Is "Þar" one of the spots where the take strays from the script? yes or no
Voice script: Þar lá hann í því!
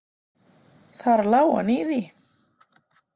no